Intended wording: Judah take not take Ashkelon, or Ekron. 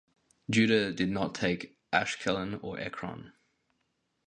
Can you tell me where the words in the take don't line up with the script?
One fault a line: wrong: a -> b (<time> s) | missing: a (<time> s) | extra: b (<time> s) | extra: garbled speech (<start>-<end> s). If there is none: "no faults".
wrong: take -> did (0.9 s)